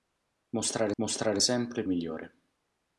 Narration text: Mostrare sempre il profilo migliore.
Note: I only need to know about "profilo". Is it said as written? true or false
false